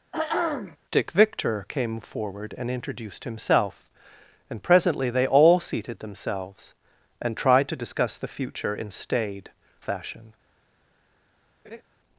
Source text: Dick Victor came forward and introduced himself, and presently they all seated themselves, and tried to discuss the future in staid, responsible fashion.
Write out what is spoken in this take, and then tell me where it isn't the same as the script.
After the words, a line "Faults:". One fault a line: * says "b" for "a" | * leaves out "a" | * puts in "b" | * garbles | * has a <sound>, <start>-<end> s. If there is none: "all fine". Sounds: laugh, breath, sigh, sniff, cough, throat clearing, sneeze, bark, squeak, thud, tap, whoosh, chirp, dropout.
Dick Victor came forward and introduced himself, and presently they all seated themselves, and tried to discuss the future in staid, fashion.
Faults:
* has a throat clearing, 0.1-0.8 s
* leaves out "responsible"
* has a laugh, 11.6-11.8 s